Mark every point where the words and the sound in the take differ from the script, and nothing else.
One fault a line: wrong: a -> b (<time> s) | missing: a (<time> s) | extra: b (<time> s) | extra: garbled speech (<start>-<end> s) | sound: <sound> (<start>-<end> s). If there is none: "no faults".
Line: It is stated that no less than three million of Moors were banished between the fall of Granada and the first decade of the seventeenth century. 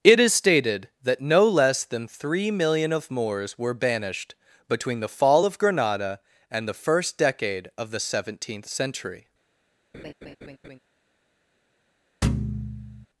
sound: laugh (9.9-10.8 s)
sound: thud (12.2-13.1 s)